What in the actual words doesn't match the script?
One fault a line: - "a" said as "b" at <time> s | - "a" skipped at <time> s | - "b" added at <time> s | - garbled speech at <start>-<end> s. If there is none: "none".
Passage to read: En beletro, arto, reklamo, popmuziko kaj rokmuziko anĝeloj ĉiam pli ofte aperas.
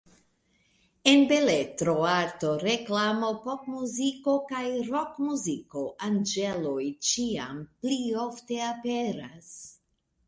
none